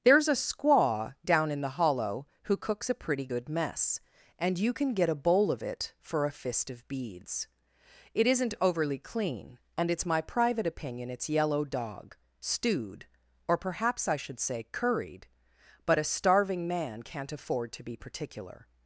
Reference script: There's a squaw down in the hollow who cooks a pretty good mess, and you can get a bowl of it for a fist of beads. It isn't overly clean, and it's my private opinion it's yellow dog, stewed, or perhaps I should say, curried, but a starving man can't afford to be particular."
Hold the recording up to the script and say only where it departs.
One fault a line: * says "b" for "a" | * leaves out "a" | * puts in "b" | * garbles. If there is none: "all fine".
all fine